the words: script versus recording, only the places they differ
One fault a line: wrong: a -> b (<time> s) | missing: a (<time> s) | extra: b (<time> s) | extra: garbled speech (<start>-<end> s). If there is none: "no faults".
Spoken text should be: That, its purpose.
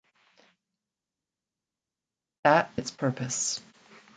no faults